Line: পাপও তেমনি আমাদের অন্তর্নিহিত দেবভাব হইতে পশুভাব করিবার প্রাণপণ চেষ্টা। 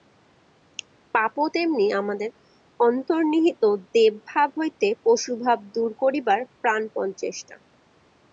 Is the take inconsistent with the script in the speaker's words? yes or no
yes